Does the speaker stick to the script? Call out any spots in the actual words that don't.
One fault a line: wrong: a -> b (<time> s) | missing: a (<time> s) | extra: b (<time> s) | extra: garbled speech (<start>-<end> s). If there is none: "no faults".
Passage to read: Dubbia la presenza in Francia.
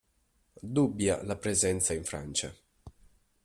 no faults